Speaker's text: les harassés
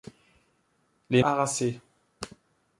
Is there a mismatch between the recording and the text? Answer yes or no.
no